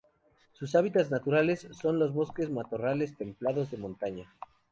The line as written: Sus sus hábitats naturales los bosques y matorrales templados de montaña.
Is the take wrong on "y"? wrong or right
right